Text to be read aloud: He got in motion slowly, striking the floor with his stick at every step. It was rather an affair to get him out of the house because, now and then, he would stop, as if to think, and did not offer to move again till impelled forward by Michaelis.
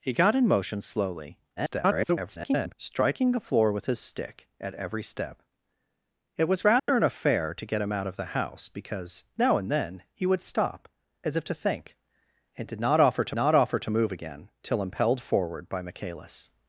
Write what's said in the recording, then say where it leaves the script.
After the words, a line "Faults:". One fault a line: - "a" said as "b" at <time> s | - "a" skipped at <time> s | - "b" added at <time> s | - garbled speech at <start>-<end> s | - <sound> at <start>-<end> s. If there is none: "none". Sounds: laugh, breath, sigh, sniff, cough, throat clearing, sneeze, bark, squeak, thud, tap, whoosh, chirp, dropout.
He got in motion slowly, [garbled] striking the floor with his stick at every step. It was rather an affair to get him out of the house because, now and then, he would stop, as if to think, and did not offer to not offer to move again till impelled forward by Michaelis.
Faults:
- garbled speech at 1.6-2.7 s
- dropout at 6.8-6.9 s
- "not offer to" added at 13.4 s